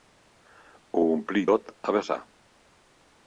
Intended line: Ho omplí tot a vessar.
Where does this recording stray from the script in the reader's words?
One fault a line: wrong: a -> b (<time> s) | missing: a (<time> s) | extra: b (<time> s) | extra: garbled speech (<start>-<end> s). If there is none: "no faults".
no faults